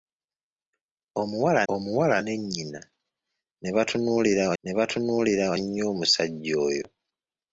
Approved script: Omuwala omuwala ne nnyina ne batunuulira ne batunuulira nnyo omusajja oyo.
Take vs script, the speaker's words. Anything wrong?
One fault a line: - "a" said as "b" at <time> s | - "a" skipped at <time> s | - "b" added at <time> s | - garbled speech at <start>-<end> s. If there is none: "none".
none